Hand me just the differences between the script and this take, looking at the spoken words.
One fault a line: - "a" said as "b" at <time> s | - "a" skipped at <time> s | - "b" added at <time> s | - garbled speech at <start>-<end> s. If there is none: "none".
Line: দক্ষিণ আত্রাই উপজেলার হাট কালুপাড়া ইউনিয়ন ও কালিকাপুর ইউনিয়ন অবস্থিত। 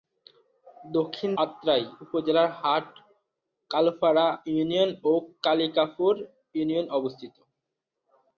none